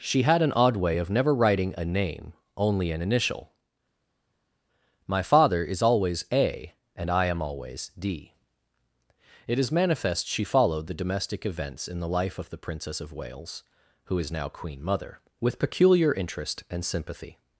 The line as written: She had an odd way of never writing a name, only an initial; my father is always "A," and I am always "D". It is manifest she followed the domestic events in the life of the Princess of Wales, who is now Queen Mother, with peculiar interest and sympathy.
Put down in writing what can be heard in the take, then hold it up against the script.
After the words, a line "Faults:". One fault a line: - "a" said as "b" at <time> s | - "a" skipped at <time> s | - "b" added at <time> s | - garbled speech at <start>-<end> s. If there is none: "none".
She had an odd way of never writing a name, only an initial; my father is always "A," and I am always "D". It is manifest she followed the domestic events in the life of the Princess of Wales, who is now Queen Mother, with peculiar interest and sympathy.
Faults:
none